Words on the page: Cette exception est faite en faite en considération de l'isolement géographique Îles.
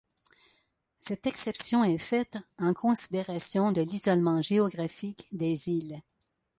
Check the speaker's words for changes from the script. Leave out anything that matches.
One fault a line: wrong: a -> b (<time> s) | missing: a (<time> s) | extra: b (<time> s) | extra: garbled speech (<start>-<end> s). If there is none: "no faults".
missing: faite en (2.7 s)
extra: des (5.3 s)